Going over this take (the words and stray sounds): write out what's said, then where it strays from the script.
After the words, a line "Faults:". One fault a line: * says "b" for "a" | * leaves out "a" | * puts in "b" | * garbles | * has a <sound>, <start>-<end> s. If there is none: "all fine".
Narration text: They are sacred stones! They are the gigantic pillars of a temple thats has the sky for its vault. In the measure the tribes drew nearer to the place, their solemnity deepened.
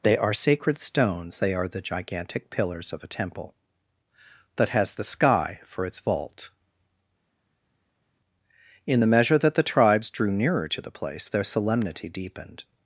They are sacred stones! They are the gigantic pillars of a temple that has the sky for its vault. In the measure that the tribes drew nearer to the place, their solemnity deepened.
Faults:
* says "that" for "thats"
* puts in "that"